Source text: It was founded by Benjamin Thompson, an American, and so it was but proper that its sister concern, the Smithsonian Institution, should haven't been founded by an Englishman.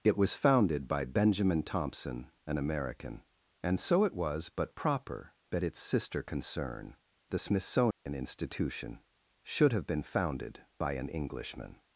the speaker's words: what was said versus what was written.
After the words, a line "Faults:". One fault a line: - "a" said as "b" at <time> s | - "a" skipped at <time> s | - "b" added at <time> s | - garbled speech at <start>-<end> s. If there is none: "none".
It was founded by Benjamin Thompson, an American, and so it was but proper that its sister concern, the Smithsonian Institution, should have been founded by an Englishman.
Faults:
- "haven't" said as "have" at 9.7 s